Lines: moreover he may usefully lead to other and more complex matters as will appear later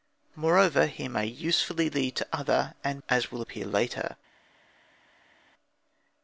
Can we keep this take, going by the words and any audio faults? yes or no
no